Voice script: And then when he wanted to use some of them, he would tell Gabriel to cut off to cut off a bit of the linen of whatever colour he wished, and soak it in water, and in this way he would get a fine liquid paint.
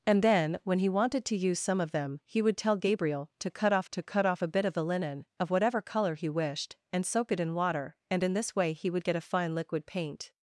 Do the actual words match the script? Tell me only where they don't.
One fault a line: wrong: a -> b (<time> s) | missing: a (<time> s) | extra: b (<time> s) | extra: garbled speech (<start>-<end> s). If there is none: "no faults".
no faults